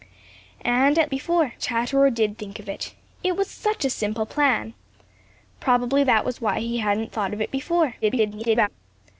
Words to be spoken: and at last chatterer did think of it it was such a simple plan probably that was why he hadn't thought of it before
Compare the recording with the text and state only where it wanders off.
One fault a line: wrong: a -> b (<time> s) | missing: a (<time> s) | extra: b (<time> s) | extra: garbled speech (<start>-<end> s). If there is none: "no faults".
wrong: last -> before (1.1 s)
extra: garbled speech (8.0-8.7 s)